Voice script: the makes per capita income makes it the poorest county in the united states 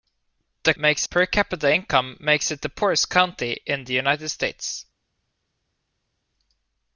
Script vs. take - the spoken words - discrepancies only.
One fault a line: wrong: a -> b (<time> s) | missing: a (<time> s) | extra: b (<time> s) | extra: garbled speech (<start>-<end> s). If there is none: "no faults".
no faults